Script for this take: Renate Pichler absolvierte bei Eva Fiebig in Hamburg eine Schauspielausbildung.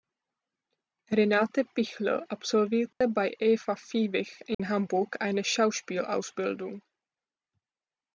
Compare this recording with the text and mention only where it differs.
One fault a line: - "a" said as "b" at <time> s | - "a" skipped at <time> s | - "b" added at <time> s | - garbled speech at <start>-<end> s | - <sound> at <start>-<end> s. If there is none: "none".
- dropout at 2.9-3.0 s
- dropout at 4.5-4.6 s